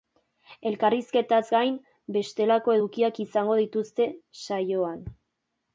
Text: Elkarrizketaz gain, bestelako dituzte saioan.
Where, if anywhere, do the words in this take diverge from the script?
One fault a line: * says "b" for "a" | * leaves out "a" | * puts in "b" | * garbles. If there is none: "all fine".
* puts in "edukiak izango"